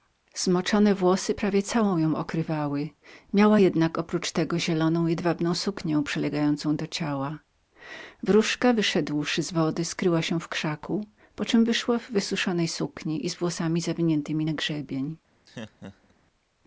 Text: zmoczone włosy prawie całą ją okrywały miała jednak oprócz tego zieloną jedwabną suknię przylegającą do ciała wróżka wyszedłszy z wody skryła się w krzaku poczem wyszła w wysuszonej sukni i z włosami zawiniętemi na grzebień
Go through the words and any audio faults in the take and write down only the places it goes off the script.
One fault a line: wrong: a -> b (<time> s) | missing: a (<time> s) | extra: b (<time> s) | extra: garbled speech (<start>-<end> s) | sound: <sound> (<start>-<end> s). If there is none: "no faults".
sound: laugh (15.5-16.1 s)